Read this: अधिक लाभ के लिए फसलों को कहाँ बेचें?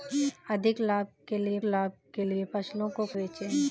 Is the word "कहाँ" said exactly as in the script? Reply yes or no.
no